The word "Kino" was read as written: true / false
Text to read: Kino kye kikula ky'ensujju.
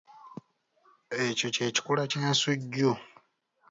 false